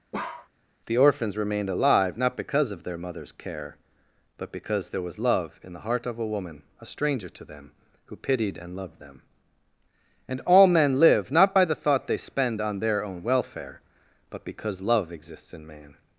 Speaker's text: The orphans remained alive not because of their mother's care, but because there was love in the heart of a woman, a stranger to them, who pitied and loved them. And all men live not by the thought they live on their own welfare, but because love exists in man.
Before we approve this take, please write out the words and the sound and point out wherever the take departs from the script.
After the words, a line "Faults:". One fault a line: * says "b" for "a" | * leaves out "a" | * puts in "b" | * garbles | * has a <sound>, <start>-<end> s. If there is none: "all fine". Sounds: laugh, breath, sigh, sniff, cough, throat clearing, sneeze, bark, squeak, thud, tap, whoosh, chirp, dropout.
The orphans remained alive not because of their mother's care, but because there was love in the heart of a woman, a stranger to them, who pitied and loved them. And all men live not by the thought they spend on their own welfare, but because love exists in man.
Faults:
* has a bark, 0.1-0.5 s
* says "spend" for "live"